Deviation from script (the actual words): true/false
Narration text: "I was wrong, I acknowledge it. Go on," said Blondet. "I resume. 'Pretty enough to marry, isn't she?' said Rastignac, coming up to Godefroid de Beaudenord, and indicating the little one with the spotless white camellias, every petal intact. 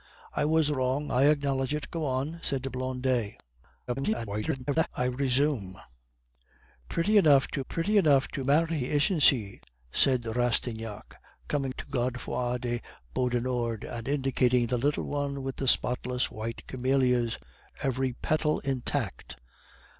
true